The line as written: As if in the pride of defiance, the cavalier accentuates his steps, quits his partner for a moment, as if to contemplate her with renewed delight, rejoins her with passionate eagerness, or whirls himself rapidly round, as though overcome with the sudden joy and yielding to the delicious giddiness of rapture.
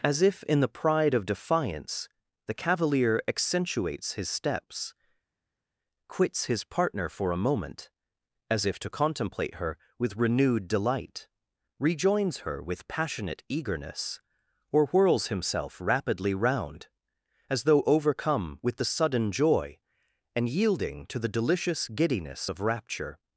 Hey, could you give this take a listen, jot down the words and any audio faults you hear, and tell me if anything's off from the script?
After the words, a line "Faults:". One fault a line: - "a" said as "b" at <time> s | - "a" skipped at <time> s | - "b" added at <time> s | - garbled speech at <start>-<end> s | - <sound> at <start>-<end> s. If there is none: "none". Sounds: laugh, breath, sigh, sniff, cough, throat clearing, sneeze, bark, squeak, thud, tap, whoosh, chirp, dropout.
As if in the pride of defiance, the cavalier accentuates his steps, quits his partner for a moment, as if to contemplate her with renewed delight, rejoins her with passionate eagerness, or whirls himself rapidly round, as though overcome with the sudden joy and yielding to the delicious giddiness of rapture.
Faults:
none